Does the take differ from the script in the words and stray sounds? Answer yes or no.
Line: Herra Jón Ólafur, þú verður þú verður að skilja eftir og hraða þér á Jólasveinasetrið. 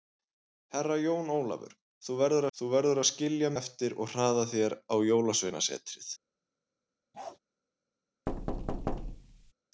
yes